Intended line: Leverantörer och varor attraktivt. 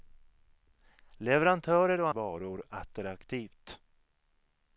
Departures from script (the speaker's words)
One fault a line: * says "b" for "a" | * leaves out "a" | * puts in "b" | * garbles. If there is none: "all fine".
all fine